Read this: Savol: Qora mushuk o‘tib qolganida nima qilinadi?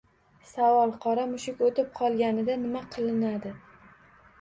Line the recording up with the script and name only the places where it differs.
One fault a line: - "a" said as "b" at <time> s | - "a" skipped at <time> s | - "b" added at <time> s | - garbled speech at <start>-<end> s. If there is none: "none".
none